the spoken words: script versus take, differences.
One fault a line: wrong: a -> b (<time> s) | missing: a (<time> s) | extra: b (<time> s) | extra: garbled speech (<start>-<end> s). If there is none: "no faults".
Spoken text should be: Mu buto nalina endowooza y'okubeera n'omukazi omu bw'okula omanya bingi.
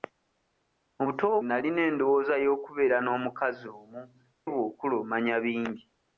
no faults